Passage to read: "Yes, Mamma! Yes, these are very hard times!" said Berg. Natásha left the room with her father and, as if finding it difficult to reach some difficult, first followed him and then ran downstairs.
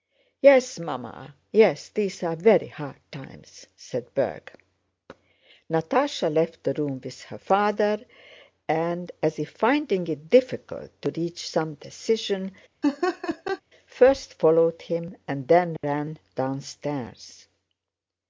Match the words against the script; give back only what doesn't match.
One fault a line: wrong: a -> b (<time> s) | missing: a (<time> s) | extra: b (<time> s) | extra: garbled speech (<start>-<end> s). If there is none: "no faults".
wrong: difficult -> decision (11.7 s)